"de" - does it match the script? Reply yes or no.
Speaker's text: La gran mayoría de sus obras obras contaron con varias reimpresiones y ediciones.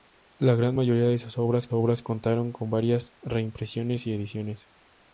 yes